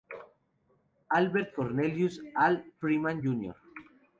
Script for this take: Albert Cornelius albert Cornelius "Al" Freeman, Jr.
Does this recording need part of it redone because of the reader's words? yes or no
yes